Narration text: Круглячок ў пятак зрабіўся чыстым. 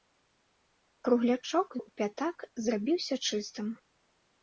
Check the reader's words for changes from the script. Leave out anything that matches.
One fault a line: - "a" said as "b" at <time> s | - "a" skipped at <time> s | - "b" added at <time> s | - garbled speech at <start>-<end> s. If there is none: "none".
none